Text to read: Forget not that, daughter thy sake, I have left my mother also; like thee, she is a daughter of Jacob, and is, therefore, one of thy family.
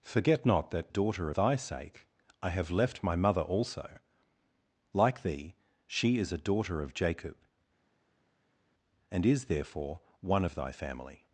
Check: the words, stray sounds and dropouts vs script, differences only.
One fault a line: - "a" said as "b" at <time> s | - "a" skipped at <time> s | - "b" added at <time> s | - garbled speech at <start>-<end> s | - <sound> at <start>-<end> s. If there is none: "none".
none